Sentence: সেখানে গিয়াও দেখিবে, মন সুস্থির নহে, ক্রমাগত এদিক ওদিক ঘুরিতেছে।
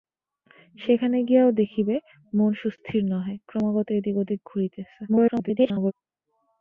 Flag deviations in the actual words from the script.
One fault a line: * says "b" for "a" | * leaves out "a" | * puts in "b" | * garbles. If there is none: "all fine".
* garbles